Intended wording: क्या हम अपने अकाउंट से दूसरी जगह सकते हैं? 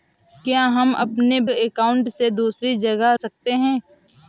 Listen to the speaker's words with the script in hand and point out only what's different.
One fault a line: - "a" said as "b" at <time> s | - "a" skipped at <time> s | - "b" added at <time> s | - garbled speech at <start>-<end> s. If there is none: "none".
none